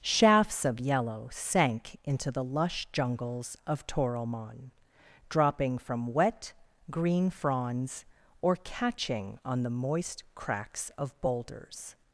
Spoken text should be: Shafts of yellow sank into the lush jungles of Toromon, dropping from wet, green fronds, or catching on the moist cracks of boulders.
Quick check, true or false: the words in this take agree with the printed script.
true